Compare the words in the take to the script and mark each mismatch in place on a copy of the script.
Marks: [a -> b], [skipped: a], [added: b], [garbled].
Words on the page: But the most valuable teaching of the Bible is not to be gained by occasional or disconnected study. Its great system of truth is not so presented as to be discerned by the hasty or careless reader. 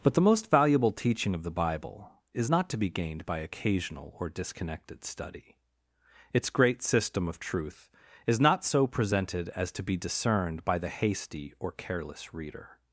But the most valuable teaching of the Bible is not to be gained by occasional or disconnected study. Its great system of truth is not so presented as to be discerned by the hasty or careless reader.